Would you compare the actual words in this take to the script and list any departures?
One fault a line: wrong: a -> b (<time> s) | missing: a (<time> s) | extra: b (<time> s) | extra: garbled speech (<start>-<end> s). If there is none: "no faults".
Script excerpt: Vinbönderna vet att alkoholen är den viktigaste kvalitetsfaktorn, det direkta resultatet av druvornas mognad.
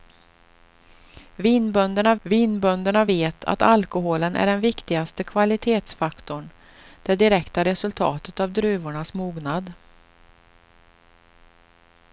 extra: vinbönderna (2.2 s)